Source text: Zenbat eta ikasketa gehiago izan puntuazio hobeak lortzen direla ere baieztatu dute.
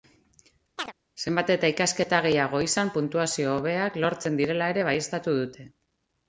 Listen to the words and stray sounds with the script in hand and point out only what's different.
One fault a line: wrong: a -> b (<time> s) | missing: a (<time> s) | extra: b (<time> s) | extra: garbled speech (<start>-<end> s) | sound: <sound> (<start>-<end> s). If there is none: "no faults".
sound: chirp (0.8-0.9 s)